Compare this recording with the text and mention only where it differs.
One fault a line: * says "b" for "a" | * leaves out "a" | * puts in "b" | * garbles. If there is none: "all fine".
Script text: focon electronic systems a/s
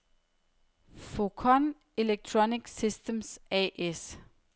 all fine